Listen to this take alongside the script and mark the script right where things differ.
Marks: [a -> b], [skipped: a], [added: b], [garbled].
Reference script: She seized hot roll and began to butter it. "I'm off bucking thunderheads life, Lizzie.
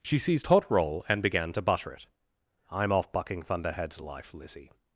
She seized hot roll and began to butter it. "I'm off bucking thunderheads life, Lizzie.